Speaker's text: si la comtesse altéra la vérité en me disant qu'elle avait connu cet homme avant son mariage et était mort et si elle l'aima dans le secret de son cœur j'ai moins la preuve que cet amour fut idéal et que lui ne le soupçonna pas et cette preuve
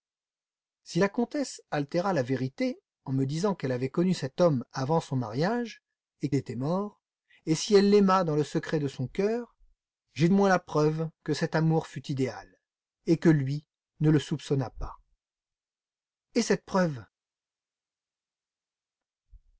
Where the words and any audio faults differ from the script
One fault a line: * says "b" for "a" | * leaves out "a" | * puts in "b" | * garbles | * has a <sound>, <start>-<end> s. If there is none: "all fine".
all fine